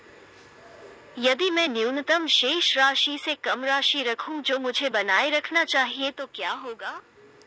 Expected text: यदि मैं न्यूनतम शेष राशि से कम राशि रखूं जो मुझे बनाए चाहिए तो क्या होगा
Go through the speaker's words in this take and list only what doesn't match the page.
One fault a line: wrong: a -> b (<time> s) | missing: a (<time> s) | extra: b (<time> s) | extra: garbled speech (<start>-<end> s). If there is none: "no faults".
extra: रखना (5.3 s)